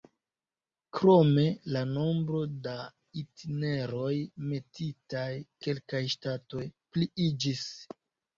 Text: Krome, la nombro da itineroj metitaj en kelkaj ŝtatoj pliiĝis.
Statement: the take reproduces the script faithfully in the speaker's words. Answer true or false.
false